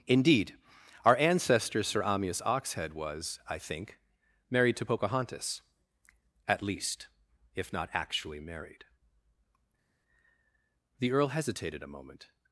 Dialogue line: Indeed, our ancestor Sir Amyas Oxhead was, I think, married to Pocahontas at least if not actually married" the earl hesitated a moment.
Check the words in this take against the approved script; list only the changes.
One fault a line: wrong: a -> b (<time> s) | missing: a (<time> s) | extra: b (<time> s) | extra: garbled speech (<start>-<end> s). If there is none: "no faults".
no faults